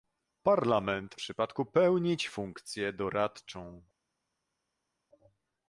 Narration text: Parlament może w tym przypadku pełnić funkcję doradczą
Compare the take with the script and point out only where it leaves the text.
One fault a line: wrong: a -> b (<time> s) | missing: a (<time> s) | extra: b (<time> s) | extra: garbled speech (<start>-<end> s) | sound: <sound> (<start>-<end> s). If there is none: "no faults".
missing: może w tym (1.2 s)